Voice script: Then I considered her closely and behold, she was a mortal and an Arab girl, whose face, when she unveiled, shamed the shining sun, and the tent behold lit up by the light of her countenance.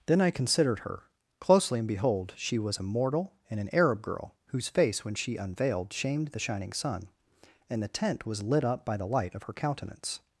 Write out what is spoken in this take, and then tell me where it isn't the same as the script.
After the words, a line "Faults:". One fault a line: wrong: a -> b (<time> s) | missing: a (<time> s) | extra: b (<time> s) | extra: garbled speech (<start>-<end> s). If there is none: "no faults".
Then I considered her closely and behold, she was a mortal and an Arab girl, whose face, when she unveiled, shamed the shining sun, and the tent was lit up by the light of her countenance.
Faults:
wrong: behold -> was (8.2 s)